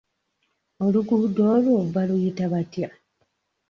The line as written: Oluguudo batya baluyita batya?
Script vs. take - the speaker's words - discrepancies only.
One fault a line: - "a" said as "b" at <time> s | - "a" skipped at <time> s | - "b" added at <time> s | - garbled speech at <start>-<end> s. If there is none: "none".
- "batya" said as "olwo" at 1.5 s